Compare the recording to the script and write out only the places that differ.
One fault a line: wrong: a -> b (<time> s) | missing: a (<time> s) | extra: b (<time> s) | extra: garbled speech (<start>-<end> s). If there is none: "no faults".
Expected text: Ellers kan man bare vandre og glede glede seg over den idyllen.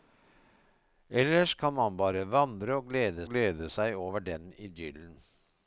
no faults